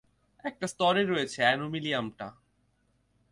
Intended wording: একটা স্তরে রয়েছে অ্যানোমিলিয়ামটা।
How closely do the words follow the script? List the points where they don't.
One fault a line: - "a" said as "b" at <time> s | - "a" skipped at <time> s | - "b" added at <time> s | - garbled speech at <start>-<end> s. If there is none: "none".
none